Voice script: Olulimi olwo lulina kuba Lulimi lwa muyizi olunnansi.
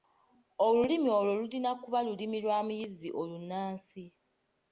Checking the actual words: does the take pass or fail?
pass